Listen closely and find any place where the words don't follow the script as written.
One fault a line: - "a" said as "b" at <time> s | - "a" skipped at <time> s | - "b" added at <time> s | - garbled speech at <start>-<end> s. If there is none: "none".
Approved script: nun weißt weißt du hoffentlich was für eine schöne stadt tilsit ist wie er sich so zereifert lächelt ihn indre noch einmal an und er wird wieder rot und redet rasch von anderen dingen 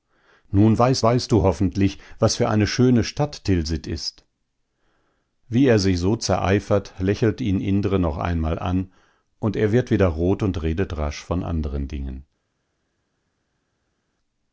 none